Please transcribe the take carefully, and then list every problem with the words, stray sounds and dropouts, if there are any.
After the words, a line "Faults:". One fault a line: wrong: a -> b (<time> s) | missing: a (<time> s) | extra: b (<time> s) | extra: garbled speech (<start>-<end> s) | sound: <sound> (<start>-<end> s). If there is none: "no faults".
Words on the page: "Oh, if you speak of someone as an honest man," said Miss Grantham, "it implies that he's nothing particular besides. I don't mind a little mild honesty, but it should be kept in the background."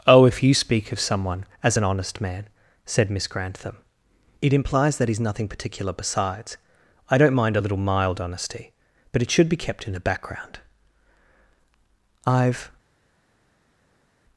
"Oh, if you speak of someone as an honest man," said Miss Grantham, "it implies that he's nothing particular besides. I don't mind a little mild honesty, but it should be kept in the background." "I've
Faults:
extra: I've (12.3 s)